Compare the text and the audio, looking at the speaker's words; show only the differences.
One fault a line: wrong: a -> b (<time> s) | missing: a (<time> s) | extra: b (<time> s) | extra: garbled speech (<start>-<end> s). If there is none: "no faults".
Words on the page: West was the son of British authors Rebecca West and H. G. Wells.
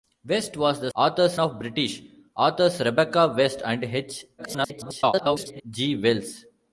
wrong: son -> authors (0.9 s)
extra: garbled speech (4.4-5.6 s)